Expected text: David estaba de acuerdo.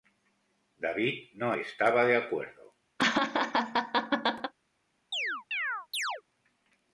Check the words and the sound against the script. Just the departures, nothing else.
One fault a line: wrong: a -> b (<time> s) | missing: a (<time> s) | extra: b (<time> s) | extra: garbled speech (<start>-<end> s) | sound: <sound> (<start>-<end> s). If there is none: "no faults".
extra: no (1.4 s)
sound: laugh (3.0-4.5 s)
sound: chirp (5.1-6.2 s)